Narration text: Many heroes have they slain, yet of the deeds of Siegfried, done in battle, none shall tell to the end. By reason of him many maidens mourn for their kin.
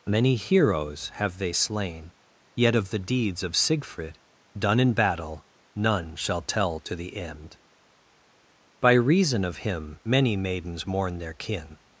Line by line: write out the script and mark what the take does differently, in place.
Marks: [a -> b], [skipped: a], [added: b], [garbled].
Many heroes have they slain, yet of the deeds of Siegfried, done in battle, none shall tell to the end. By reason of him many maidens mourn [skipped: for] their kin.